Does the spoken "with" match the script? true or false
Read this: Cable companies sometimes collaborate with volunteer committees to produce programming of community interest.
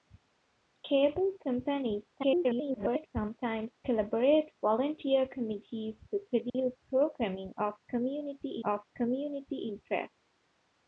false